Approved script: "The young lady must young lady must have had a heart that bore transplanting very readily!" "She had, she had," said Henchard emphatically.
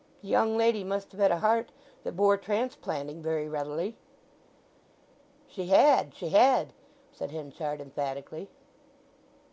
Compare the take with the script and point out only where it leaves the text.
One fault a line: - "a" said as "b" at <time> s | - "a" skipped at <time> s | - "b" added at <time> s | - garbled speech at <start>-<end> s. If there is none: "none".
- "young lady must" skipped at 1.1 s